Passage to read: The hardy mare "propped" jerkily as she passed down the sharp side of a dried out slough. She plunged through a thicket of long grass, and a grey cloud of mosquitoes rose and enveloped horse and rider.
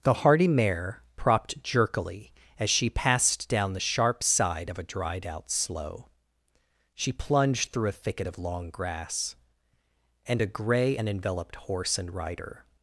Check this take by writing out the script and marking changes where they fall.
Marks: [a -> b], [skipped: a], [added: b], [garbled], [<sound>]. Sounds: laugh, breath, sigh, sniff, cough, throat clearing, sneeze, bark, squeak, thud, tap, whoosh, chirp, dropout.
The hardy mare "propped" jerkily as she passed down the sharp side of a dried out slough. She plunged through a thicket of long grass, and a grey [skipped: cloud of mosquitoes rose] and enveloped horse and rider.